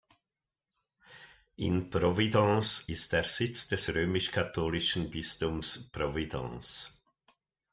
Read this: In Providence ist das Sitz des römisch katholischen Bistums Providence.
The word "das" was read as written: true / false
false